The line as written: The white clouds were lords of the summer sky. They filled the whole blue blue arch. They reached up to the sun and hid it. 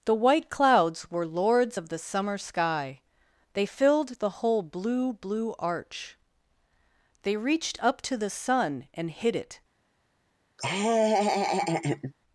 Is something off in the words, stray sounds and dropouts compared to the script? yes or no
yes